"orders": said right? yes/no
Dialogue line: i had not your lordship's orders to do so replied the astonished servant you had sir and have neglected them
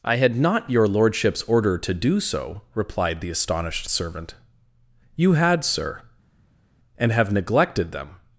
no